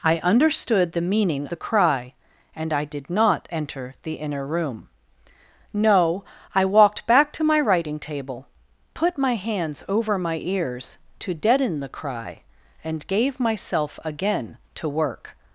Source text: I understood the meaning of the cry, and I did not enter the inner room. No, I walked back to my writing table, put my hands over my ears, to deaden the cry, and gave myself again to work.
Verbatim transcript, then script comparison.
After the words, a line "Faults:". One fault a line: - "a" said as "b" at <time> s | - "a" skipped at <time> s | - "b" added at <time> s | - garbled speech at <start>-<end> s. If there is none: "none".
I understood the meaning the cry, and I did not enter the inner room. No, I walked back to my writing table, put my hands over my ears, to deaden the cry, and gave myself again to work.
Faults:
- "of" skipped at 1.4 s